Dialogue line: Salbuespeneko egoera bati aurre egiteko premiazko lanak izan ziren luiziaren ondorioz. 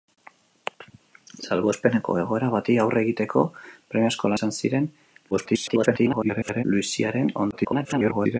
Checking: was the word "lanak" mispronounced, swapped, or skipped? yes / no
yes